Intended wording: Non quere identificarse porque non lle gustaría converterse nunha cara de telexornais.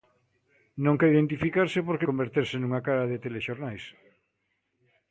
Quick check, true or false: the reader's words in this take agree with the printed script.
false